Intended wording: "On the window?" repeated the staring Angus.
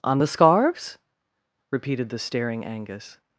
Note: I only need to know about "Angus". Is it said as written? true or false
true